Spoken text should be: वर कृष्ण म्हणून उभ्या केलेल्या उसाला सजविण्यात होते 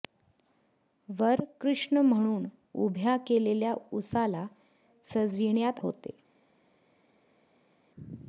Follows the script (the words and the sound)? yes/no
yes